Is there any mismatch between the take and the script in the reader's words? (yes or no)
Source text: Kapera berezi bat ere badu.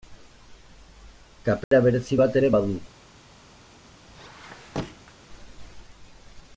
no